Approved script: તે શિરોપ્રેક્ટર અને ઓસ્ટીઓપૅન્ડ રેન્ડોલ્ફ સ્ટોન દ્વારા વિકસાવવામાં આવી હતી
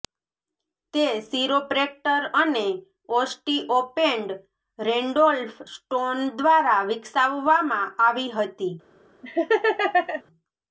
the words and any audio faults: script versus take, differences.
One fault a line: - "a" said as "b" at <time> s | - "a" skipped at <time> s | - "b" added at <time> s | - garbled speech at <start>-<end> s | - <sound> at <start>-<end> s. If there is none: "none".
- laugh at 9.2-10.2 s